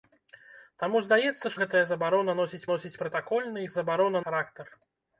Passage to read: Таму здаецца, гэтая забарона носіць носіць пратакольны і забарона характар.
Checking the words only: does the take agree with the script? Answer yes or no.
yes